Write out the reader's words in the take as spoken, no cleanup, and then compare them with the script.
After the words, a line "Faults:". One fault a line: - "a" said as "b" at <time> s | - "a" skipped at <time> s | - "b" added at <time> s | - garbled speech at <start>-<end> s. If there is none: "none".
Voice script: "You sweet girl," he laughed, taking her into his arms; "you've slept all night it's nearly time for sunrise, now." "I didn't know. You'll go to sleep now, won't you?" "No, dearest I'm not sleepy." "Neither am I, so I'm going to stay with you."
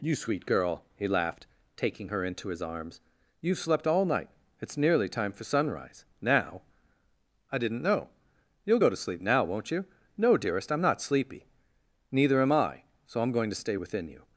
"You sweet girl," he laughed, taking her into his arms; "you've slept all night it's nearly time for sunrise, now." "I didn't know. You'll go to sleep now, won't you?" "No, dearest I'm not sleepy." "Neither am I, so I'm going to stay within you."
Faults:
- "with" said as "within" at 13.7 s